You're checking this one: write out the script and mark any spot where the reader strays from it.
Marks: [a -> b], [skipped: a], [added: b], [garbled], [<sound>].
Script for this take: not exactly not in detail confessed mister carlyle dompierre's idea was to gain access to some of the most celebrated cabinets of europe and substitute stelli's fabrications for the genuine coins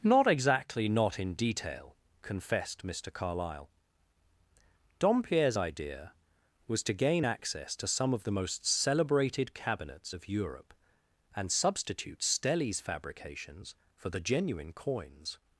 not exactly not in detail confessed mister carlyle dompierre's idea was to gain access to some of the most celebrated cabinets of europe and substitute stelli's fabrications for the genuine coins